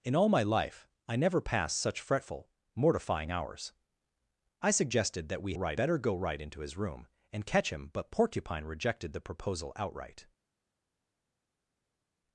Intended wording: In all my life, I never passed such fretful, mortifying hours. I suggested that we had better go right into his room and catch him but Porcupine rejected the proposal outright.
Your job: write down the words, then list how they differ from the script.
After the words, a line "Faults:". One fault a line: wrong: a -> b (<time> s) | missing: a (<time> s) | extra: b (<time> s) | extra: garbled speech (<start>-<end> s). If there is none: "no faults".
In all my life, I never passed such fretful, mortifying hours. I suggested that we right better go right into his room and catch him but Porcupine rejected the proposal outright.
Faults:
wrong: had -> right (5.5 s)